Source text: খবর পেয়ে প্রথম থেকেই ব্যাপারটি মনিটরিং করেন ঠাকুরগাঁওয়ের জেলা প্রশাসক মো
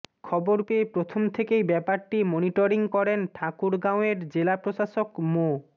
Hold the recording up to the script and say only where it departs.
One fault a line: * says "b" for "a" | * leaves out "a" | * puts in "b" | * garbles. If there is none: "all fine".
all fine